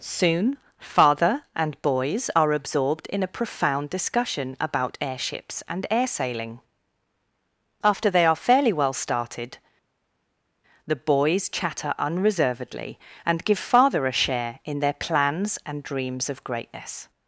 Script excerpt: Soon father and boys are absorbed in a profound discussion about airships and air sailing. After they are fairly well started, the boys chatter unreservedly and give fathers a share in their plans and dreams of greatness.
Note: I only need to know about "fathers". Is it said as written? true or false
false